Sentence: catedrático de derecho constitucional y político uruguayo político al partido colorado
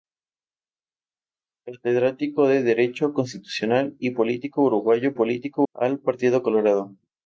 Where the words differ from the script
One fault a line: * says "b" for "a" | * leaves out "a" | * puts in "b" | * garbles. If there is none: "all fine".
all fine